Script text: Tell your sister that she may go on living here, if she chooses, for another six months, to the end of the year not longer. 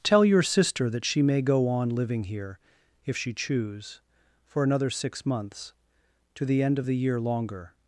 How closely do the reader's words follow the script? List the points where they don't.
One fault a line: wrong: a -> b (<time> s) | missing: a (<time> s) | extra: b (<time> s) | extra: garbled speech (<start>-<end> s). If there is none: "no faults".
wrong: chooses -> choose (3.3 s)
missing: not (7.2 s)